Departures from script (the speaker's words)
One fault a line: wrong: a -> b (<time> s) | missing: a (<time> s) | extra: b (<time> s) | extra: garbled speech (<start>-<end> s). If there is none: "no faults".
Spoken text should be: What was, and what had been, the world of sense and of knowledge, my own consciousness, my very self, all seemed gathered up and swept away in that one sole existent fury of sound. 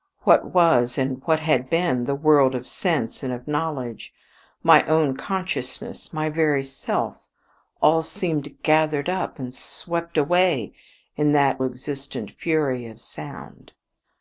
missing: one sole (11.6 s)